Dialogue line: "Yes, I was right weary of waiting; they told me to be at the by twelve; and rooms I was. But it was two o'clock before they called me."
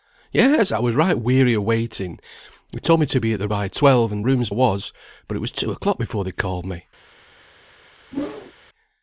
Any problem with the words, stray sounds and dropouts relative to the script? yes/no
yes